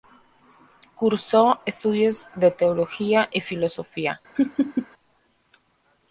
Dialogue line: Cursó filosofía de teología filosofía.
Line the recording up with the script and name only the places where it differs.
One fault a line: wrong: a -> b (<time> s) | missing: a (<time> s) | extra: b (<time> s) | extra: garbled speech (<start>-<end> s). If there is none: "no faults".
wrong: filosofía -> estudios (1.6 s)
extra: y (3.3 s)